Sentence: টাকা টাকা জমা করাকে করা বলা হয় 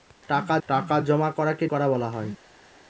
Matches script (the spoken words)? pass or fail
pass